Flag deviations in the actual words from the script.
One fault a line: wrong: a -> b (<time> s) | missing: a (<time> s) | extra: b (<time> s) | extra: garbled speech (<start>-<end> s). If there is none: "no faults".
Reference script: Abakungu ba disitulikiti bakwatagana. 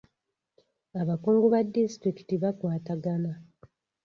no faults